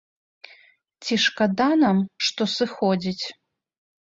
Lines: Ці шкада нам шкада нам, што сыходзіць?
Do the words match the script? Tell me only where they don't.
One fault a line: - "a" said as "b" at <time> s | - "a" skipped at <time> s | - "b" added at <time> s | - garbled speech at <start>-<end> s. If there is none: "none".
- "шкада нам" skipped at 2.0 s